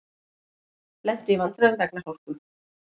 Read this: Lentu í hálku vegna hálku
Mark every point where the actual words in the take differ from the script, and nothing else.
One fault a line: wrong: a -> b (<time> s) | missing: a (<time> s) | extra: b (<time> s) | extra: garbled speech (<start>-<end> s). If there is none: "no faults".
wrong: hálku -> vandræðum (1.4 s)